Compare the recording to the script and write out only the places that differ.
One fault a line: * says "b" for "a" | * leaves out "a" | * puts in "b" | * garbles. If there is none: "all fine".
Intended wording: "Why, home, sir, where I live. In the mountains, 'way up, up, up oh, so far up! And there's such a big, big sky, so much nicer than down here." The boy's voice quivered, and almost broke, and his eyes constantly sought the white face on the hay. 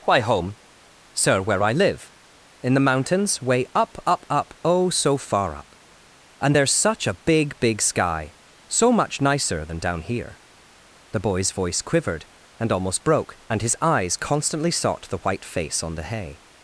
all fine